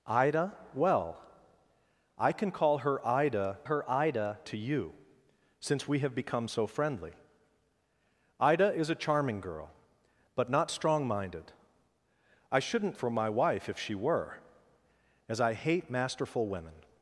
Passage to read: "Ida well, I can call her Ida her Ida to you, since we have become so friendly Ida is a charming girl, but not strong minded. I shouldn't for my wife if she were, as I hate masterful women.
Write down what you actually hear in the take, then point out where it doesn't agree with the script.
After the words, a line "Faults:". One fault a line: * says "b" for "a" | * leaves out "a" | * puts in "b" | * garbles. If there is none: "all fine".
"Ida well, I can call her Ida her Ida to you, since we have become so friendly Ida is a charming girl, but not strong minded. I shouldn't for my wife if she were, as I hate masterful women.
Faults:
all fine